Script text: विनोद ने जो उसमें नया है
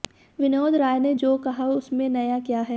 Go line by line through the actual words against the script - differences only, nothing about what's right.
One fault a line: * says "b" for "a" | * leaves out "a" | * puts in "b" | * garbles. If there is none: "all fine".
* puts in "राय"
* puts in "कहा"
* puts in "क्या"